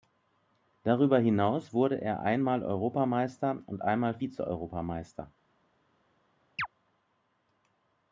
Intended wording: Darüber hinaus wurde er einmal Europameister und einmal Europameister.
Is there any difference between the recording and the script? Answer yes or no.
yes